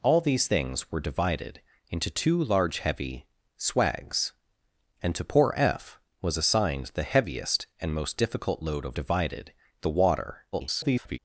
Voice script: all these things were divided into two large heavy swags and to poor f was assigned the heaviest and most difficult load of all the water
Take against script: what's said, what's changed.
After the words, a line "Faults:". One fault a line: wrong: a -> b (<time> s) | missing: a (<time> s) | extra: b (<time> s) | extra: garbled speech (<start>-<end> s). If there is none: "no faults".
all these things were divided into two large heavy swags and to poor f was assigned the heaviest and most difficult load of divided the water [garbled]
Faults:
wrong: all -> divided (8.9 s)
extra: garbled speech (10.5-11.2 s)